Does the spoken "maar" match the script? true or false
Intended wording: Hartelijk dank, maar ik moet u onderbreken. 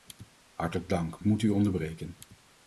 false